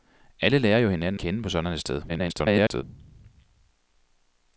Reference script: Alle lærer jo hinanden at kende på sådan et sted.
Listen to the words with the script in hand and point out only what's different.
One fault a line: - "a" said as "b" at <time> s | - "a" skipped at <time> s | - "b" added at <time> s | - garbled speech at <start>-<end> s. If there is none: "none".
- "at" skipped at 1.2 s
- garbled speech at 2.1-2.8 s